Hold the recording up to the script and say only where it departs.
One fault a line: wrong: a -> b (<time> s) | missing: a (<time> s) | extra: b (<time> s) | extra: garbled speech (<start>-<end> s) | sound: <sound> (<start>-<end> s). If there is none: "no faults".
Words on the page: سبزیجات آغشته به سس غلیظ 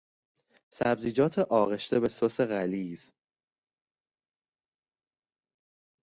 no faults